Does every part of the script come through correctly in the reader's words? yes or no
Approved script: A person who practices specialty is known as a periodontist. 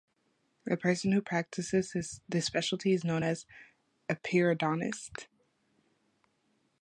no